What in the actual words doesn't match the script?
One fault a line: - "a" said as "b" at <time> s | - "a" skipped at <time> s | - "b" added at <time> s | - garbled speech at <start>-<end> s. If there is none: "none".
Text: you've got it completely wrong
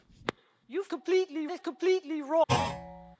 - "got" said as "completely" at 0.9 s